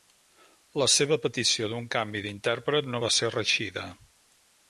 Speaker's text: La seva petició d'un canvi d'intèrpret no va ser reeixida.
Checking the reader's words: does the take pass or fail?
pass